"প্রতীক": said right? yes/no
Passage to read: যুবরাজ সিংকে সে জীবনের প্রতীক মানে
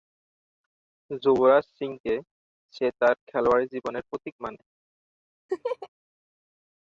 yes